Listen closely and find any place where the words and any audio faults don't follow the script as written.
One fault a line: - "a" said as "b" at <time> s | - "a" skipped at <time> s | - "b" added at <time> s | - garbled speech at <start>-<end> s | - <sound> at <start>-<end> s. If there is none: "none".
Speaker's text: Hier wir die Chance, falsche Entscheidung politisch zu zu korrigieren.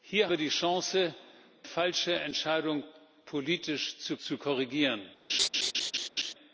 - laugh at 5.3-6.3 s